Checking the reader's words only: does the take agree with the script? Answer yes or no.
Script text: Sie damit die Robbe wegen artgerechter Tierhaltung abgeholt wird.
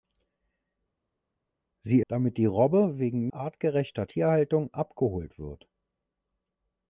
yes